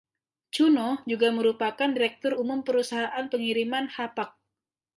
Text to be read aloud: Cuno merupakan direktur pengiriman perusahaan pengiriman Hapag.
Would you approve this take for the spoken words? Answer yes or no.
no